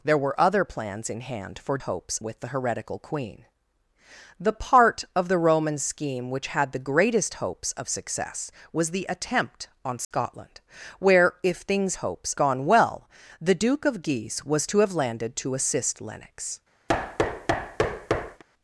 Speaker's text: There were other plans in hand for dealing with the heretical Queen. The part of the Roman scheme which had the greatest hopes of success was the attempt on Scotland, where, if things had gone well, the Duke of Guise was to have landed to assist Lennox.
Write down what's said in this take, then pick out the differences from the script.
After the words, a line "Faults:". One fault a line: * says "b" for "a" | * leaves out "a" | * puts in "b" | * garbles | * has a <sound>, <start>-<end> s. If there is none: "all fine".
There were other plans in hand for hopes with the heretical Queen. The part of the Roman scheme which had the greatest hopes of success was the attempt on Scotland, where, if things hopes gone well, the Duke of Guise was to have landed to assist Lennox.
Faults:
* says "hopes" for "dealing"
* has a dropout, 10.0-10.1 s
* says "hopes" for "had"
* has a thud, 16.9-18.4 s